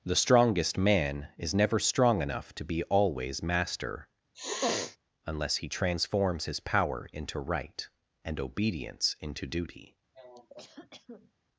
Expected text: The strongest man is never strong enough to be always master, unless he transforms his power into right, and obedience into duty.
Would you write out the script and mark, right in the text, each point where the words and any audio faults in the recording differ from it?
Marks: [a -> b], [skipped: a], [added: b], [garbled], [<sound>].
The strongest man is never strong enough to be always master, [sniff] unless he transforms his power into right, and obedience into duty. [cough]